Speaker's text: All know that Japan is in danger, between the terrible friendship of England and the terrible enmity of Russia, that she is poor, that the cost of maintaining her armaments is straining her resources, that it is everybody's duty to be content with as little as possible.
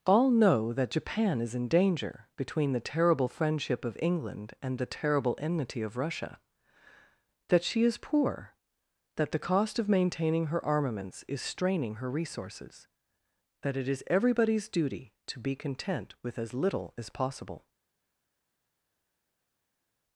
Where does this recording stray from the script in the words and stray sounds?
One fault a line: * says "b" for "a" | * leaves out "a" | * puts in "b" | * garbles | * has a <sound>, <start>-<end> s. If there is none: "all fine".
all fine